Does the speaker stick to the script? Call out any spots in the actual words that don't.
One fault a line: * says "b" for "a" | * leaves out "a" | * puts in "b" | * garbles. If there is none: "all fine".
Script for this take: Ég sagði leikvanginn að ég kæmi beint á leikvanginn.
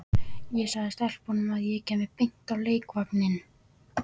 * says "stelpunum" for "leikvanginn"